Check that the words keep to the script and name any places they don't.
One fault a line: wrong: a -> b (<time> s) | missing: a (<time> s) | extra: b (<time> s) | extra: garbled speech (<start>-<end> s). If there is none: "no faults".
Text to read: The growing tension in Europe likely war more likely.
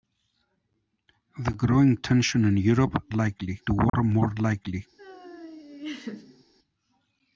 no faults